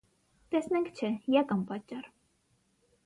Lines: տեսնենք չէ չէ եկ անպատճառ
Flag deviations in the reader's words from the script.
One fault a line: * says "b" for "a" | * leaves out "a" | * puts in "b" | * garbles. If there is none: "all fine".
* leaves out "չէ"